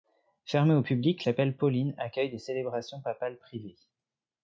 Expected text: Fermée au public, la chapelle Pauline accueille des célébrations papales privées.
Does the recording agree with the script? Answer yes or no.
no